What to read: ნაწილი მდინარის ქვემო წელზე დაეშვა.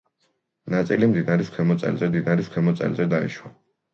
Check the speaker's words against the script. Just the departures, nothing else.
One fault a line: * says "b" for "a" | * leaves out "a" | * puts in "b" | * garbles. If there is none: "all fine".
* puts in "მდინარის ქვემო წელზე"